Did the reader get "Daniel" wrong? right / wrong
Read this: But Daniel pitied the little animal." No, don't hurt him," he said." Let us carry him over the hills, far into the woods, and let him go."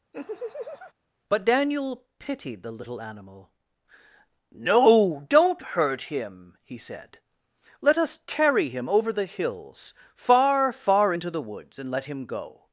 right